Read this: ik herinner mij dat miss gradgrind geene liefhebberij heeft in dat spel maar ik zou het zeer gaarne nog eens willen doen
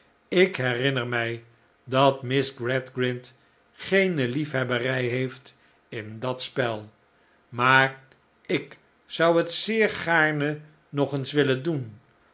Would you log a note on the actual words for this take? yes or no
no